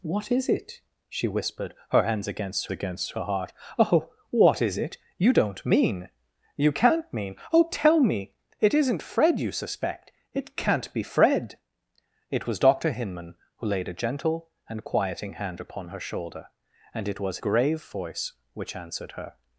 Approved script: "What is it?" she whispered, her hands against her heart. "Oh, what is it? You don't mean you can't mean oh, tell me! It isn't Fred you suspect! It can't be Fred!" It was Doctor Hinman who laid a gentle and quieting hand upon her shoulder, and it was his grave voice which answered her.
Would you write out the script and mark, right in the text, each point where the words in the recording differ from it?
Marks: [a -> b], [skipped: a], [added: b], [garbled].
"What is it?" she whispered, her hands against [added: against] her heart. "Oh, what is it? You don't mean you can't mean oh, tell me! It isn't Fred you suspect! It can't be Fred!" It was Doctor Hinman who laid a gentle and quieting hand upon her shoulder, and it was [skipped: his] grave voice which answered her.